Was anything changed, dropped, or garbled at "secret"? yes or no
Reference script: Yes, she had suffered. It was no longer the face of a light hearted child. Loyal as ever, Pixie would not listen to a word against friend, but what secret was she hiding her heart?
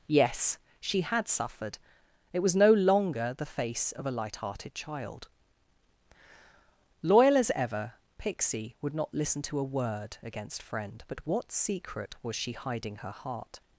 no